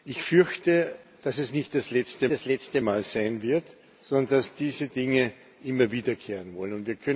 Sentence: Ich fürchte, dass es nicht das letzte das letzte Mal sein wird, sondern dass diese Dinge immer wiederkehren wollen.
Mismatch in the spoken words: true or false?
false